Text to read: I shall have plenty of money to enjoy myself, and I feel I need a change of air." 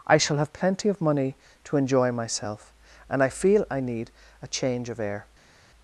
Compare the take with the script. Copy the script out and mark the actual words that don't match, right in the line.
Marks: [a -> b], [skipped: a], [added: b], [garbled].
I shall have plenty of money to enjoy myself, and I feel I need a change of air."